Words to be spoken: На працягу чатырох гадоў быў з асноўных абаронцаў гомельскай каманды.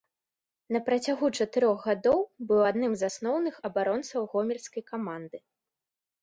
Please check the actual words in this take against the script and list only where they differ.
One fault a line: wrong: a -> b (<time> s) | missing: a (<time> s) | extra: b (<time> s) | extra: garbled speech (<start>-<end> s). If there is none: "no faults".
extra: адным (2.7 s)